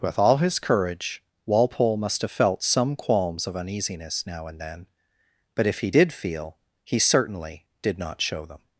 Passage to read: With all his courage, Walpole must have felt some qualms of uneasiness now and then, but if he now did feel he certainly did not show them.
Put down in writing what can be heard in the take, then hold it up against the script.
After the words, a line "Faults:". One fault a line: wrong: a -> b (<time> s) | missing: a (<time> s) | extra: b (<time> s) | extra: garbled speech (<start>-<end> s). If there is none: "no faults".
With all his courage, Walpole must have felt some qualms of uneasiness now and then, but if he did feel he certainly did not show them.
Faults:
missing: now (5.9 s)